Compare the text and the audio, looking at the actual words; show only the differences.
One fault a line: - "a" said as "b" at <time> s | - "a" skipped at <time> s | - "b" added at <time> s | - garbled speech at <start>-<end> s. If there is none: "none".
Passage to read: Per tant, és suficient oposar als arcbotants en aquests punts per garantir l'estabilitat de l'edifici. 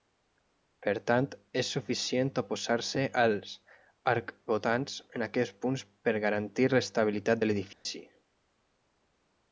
- "se" added at 2.9 s